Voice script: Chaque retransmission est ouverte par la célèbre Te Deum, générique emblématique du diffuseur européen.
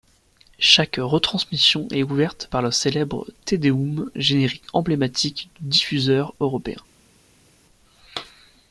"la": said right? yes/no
no